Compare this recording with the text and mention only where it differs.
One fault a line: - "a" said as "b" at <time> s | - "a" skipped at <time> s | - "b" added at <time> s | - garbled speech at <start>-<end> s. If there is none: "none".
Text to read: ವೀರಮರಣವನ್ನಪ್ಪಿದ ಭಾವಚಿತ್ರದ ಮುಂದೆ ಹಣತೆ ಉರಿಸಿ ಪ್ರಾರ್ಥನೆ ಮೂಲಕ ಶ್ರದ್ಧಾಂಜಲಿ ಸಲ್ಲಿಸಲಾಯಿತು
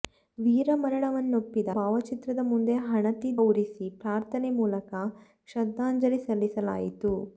none